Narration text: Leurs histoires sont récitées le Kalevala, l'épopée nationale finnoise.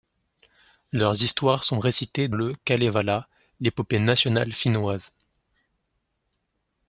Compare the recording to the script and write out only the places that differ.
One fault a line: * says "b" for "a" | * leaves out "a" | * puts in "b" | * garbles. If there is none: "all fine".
all fine